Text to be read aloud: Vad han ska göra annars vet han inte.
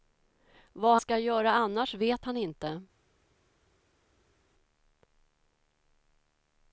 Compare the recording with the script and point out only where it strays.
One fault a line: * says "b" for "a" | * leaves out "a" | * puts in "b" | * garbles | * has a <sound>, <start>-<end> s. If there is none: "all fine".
* leaves out "han"